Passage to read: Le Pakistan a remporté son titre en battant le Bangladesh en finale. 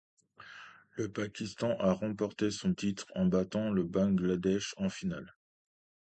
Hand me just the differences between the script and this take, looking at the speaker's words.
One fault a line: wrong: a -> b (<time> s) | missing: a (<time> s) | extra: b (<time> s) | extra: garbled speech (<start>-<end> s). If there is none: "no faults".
no faults